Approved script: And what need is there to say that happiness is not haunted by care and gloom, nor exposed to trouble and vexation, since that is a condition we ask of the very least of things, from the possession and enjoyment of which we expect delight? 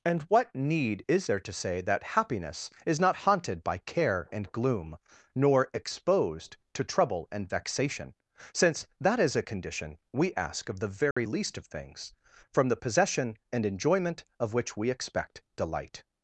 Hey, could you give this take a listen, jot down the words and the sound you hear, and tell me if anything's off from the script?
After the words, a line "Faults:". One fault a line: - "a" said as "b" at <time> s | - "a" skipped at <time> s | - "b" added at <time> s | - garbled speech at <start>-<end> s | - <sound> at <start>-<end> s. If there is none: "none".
And what need is there to say that happiness is not haunted by care and gloom, nor exposed to trouble and vexation, since that is a condition we ask of the very least of things, from the possession and enjoyment of which we expect delight?
Faults:
- dropout at 11.1-11.2 s